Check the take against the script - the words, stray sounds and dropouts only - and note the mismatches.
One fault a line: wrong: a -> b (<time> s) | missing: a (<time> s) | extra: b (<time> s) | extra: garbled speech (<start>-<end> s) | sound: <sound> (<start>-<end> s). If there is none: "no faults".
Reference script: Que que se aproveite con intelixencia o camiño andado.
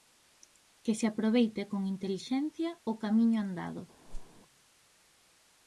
missing: que (0.9 s)
sound: whoosh (4.1-4.4 s)